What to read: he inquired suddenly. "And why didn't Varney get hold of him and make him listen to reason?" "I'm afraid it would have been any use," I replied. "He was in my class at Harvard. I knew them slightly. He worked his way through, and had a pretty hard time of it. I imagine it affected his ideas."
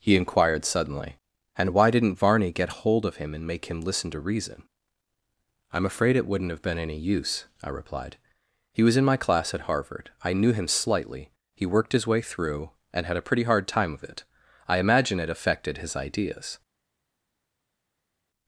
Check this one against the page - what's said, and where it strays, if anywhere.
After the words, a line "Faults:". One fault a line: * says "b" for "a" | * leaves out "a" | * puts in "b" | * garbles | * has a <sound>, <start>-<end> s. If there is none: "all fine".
he inquired suddenly. "And why didn't Varney get hold of him and make him listen to reason?" "I'm afraid it wouldn't have been any use," I replied. "He was in my class at Harvard. I knew him slightly. He worked his way through, and had a pretty hard time of it. I imagine it affected his ideas."
Faults:
* says "wouldn't" for "would"
* says "him" for "them"